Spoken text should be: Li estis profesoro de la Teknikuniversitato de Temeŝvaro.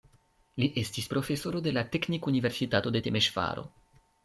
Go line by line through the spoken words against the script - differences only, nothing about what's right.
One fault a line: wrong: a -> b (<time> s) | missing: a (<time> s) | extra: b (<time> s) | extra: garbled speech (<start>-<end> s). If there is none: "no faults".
no faults